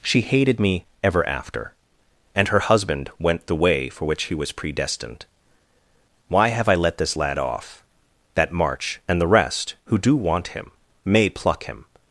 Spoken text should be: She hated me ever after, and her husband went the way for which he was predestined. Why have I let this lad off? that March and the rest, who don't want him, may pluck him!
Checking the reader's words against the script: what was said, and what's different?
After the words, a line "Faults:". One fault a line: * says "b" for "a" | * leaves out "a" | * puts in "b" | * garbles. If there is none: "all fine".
She hated me ever after, and her husband went the way for which he was predestined. Why have I let this lad off? that March and the rest, who do want him, may pluck him!
Faults:
* says "do" for "don't"